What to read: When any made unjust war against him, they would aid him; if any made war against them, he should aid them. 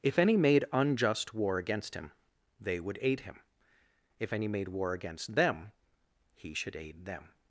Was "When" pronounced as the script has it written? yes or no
no